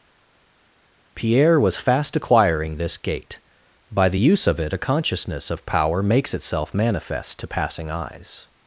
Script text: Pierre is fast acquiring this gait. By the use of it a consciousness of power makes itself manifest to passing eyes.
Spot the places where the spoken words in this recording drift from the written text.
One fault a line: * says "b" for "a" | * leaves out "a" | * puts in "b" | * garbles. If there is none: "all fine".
* says "was" for "is"